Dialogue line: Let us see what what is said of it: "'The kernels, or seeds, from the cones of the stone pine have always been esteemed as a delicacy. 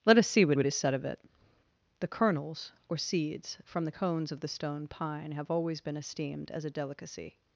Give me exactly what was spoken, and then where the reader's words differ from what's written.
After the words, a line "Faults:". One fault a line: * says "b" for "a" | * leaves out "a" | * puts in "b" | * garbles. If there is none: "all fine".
Let us see what what is said of it: "'The kernels, or seeds, from the cones of the stone pine have always been esteemed as a delicacy.
Faults:
all fine